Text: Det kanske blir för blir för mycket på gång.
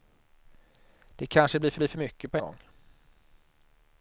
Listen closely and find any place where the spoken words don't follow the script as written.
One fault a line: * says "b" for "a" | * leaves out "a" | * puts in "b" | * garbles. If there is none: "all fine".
all fine